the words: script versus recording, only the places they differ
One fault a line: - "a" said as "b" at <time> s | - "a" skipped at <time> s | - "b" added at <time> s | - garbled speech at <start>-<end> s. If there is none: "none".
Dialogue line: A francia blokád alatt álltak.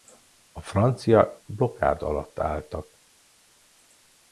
none